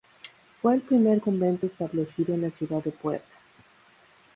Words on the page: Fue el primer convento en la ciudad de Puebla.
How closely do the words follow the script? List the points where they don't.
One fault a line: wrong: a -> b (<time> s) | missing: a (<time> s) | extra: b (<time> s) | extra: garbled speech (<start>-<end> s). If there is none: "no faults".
extra: establecido (1.6 s)